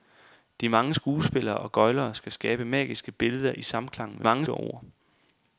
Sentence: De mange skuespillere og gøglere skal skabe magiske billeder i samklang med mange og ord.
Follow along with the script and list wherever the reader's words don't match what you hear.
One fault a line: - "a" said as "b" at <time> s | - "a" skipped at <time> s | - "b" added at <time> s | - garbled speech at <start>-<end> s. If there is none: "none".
none